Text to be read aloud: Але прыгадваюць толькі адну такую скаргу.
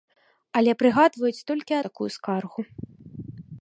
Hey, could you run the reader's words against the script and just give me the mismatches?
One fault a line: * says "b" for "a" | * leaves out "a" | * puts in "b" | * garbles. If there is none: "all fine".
* leaves out "адну"